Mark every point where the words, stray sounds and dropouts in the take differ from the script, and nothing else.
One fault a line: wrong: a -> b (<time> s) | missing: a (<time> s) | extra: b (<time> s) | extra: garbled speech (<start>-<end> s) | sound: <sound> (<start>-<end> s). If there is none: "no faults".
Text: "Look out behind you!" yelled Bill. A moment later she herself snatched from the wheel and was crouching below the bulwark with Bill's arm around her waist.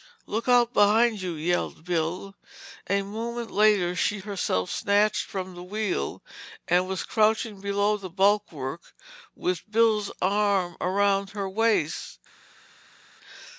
no faults